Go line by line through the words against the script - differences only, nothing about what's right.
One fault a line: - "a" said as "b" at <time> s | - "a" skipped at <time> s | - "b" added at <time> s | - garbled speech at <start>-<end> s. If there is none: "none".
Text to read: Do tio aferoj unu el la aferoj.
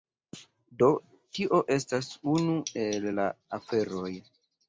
- "aferoj" said as "estas" at 1.8 s